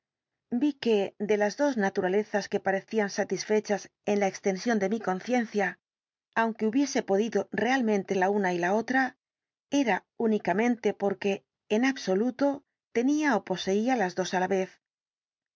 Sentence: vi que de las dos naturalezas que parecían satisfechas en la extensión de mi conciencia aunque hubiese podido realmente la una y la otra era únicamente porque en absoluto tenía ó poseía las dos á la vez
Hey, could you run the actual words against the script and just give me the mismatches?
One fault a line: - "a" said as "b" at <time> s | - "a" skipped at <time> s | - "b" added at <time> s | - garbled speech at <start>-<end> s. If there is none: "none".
none